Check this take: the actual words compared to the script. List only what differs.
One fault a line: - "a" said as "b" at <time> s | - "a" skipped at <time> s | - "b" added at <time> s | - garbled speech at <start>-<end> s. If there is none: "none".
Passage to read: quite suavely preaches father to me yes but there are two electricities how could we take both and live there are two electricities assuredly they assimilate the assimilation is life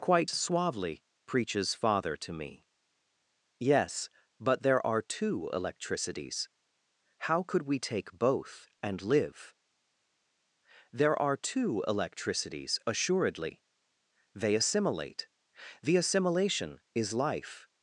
none